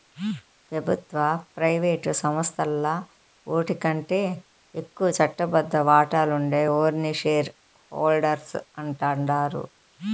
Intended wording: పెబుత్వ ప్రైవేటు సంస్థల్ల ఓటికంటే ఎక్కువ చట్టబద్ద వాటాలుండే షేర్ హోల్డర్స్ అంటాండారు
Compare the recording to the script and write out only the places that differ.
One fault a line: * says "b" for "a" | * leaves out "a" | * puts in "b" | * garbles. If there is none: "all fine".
* puts in "ఓర్ని"